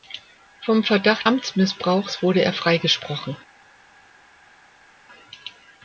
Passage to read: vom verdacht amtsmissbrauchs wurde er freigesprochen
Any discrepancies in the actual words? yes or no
no